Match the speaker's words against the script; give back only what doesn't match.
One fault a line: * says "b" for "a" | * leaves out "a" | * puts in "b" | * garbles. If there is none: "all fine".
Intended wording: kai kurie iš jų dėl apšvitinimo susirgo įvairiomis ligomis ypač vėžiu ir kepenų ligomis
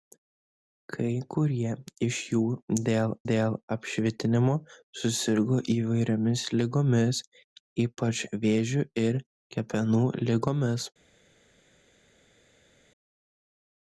* puts in "dėl"